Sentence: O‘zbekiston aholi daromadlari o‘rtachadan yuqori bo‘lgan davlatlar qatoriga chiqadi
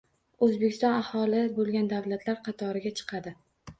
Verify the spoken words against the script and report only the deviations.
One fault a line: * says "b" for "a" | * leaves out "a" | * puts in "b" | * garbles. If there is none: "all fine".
* leaves out "daromadlari o‘rtachadan yuqori"